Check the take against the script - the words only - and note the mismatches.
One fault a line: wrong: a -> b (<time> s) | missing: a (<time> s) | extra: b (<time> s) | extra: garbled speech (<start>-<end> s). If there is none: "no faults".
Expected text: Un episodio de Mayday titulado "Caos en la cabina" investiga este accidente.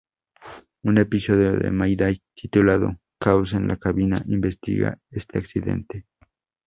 no faults